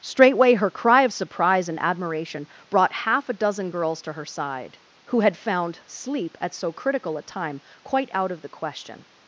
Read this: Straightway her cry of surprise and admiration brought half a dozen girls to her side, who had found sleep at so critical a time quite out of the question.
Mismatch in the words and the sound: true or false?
false